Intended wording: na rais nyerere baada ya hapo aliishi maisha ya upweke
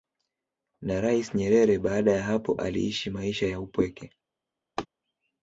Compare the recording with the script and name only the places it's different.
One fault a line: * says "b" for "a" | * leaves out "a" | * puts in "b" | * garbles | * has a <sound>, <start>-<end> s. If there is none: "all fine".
* has a laugh, 4.8-4.9 s